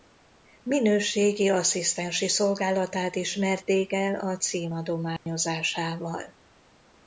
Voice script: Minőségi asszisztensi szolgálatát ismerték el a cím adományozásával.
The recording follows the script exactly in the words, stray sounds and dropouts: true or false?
false